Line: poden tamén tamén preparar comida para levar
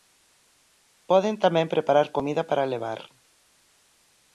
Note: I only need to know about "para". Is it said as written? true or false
true